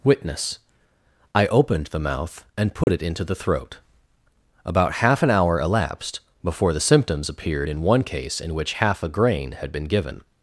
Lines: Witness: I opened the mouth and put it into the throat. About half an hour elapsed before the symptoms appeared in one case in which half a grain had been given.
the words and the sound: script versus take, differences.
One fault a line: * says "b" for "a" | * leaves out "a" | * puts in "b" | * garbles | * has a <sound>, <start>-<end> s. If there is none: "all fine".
* has a dropout, 2.8-2.9 s